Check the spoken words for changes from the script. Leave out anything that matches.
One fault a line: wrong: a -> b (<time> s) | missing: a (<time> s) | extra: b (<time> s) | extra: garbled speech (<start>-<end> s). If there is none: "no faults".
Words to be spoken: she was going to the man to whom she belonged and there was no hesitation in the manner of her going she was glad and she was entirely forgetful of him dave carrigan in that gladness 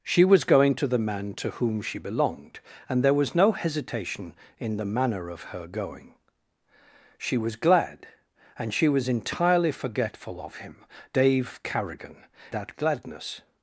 missing: in (12.2 s)